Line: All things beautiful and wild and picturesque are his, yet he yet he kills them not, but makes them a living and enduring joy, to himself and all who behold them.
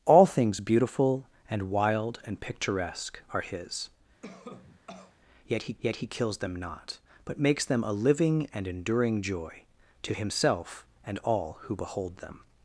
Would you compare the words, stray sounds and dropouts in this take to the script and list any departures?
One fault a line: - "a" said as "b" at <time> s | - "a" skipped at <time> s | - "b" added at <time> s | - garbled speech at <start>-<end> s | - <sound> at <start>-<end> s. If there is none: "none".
- cough at 4.2-5.2 s